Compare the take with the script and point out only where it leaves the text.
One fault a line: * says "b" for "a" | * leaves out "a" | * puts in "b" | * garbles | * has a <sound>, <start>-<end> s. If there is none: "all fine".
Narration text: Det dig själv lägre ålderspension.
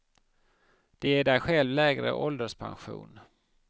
* puts in "ger"